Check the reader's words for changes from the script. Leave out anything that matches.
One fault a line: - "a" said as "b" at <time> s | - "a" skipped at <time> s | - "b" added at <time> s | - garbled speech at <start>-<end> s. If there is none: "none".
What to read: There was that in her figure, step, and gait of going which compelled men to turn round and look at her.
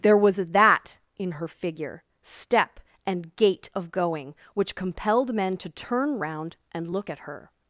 none